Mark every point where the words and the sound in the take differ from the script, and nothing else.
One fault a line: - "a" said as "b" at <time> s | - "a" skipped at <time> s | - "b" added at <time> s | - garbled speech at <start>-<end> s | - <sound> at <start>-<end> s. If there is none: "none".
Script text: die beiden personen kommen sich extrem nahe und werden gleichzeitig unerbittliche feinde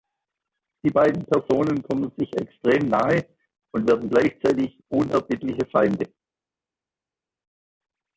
none